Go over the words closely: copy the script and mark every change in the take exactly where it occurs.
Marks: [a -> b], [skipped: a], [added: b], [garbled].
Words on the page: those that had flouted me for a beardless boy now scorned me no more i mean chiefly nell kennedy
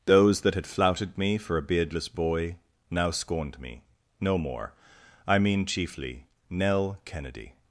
those that had flouted me for a beardless boy now scorned me no more i mean chiefly nell kennedy